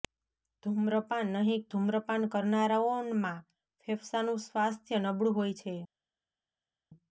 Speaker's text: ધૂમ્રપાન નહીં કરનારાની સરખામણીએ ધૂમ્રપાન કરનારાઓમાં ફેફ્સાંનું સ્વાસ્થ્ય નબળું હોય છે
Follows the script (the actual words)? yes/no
no